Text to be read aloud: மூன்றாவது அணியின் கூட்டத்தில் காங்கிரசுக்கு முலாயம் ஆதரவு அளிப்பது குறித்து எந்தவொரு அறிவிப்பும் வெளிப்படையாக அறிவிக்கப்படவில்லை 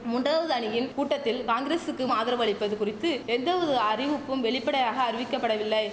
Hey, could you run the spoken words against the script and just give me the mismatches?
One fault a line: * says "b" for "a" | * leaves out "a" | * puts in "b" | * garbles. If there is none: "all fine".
* leaves out "முலாயம்"